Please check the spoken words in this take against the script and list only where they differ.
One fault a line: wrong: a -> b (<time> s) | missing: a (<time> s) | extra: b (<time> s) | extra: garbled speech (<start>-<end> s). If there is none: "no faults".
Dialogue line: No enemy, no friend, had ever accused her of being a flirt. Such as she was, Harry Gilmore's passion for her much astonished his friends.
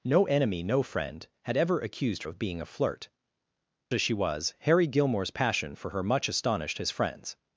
missing: her (2.2 s)
missing: Such (3.1 s)